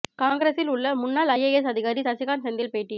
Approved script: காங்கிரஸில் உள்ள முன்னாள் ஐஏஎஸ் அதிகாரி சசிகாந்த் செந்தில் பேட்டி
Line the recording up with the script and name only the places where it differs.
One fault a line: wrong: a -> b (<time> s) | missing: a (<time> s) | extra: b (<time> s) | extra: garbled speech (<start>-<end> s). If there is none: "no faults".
no faults